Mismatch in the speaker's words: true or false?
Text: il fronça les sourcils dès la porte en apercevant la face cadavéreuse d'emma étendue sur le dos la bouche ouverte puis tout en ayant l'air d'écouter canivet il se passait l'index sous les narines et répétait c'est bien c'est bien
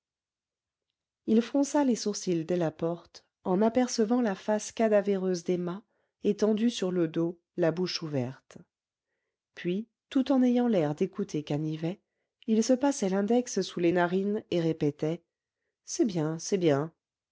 false